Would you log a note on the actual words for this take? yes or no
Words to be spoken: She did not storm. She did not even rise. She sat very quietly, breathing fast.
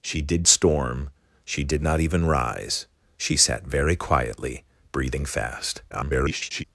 yes